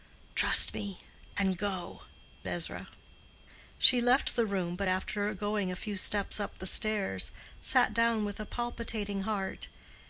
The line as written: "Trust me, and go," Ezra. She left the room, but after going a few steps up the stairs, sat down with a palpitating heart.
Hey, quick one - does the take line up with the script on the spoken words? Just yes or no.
yes